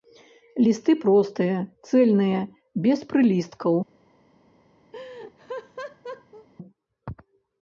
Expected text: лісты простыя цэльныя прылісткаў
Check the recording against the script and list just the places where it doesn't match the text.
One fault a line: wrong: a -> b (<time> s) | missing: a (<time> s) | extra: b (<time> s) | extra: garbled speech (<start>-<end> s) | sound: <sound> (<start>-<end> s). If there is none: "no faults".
extra: без (2.9 s)
sound: laugh (4.9-6.5 s)